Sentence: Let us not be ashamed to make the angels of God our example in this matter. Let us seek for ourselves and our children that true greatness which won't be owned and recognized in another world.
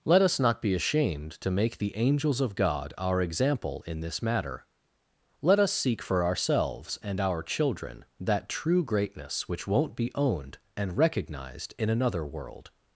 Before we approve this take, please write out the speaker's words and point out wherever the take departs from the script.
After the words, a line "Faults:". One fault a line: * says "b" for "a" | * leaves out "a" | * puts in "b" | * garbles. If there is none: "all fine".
Let us not be ashamed to make the angels of God our example in this matter. Let us seek for ourselves and our children that true greatness which won't be owned and recognized in another world.
Faults:
all fine